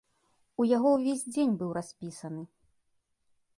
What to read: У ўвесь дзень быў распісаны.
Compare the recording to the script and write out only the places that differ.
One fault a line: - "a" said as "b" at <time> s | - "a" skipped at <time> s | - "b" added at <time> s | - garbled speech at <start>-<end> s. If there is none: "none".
- "яго" added at 0.8 s